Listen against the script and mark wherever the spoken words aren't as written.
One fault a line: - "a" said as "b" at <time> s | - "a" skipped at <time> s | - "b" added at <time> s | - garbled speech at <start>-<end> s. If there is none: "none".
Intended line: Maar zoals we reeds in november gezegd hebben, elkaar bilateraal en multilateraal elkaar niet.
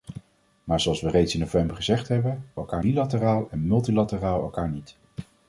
none